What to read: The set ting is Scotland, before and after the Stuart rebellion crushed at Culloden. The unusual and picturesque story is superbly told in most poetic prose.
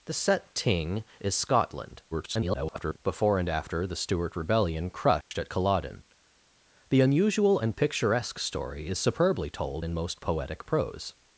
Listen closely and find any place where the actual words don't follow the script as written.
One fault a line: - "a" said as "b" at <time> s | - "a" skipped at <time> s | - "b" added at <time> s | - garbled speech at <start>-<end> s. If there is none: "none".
- garbled speech at 2.1-3.0 s